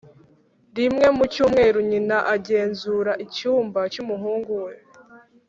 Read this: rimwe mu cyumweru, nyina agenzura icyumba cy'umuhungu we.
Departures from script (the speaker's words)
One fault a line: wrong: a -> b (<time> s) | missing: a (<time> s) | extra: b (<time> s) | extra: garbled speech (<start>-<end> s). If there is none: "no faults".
no faults